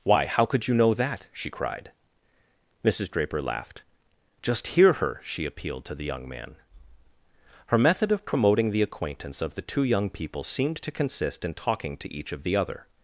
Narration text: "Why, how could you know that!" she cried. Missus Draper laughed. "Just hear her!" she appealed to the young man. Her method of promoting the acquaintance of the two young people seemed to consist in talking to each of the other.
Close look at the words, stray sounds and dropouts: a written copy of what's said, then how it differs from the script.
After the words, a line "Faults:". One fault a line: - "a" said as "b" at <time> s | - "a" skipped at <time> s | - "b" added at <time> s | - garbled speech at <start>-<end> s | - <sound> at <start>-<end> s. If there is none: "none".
"Why, how could you know that!" she cried. Missus Draper laughed. "Just hear her!" she appealed to the young man. Her method of promoting the acquaintance of the two young people seemed to consist in talking to each of the other.
Faults:
none